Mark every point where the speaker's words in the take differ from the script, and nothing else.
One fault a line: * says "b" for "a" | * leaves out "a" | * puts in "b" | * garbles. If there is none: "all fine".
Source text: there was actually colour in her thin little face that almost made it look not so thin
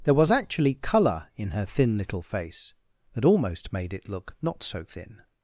all fine